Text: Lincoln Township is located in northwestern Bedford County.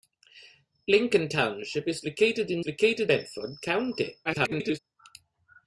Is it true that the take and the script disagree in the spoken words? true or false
true